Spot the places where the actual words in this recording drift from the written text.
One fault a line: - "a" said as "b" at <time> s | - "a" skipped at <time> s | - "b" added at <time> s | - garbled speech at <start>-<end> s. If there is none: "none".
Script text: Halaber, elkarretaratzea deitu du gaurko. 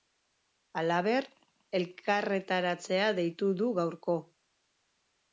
none